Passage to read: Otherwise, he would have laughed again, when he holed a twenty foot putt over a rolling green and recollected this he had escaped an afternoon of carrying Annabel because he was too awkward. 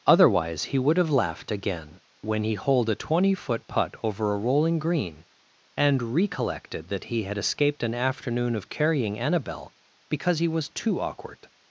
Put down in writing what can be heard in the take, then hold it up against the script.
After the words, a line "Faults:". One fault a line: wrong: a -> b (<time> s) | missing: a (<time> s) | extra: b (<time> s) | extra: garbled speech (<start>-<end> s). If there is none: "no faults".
Otherwise, he would have laughed again, when he holed a twenty foot putt over a rolling green and recollected that he had escaped an afternoon of carrying Annabel because he was too awkward.
Faults:
wrong: this -> that (6.9 s)